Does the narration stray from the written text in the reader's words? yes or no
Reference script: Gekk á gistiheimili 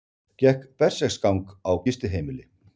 yes